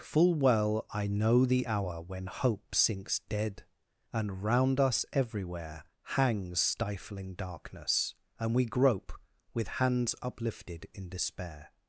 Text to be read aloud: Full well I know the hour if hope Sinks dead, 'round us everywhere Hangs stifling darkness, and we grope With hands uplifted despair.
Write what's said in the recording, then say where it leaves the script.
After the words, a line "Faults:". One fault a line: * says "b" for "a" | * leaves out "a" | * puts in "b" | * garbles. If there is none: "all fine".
Full well I know the hour when hope Sinks dead, and 'round us everywhere Hangs stifling darkness, and we grope With hands uplifted in despair.
Faults:
* says "when" for "if"
* puts in "and"
* puts in "in"